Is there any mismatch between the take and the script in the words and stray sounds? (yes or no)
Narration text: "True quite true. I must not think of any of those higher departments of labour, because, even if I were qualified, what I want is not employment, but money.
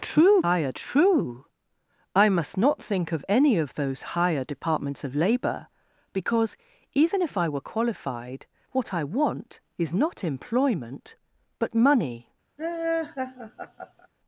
yes